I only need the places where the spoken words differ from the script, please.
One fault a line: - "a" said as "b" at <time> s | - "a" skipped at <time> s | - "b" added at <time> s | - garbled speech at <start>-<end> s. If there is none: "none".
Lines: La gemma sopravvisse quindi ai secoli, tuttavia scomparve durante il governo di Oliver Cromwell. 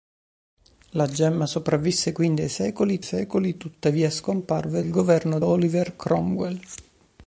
- "secoli" added at 3.0 s
- "durante" skipped at 4.8 s
- "di" skipped at 5.4 s